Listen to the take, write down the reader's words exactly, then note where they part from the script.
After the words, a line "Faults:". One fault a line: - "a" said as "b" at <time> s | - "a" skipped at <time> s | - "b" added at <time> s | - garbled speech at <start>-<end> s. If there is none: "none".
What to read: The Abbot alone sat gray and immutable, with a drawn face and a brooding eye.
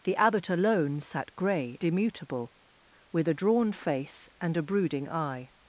The Abbot alone sat gray immutable, with a drawn face and a brooding eye.
Faults:
- "and" skipped at 1.8 s